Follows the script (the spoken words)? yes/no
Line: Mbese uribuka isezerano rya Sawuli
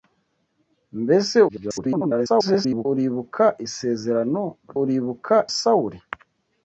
no